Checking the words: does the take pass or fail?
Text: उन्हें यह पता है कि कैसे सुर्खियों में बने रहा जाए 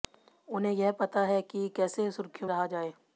fail